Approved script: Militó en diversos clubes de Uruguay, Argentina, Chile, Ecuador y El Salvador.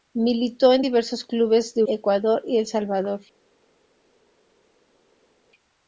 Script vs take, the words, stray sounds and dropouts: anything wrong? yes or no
yes